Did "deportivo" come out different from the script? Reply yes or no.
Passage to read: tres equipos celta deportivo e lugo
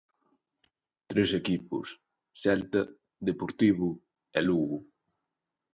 no